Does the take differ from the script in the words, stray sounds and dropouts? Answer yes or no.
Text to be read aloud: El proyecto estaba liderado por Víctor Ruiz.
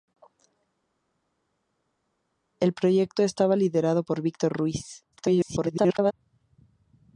yes